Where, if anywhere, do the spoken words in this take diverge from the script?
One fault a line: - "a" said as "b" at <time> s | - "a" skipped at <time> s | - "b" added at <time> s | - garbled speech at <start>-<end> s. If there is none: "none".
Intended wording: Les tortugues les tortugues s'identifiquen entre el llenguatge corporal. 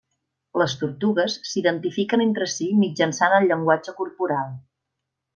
- "les tortugues s'identifiquen entre" said as "s'identifiquen entre si mitjançant" at 1.5 s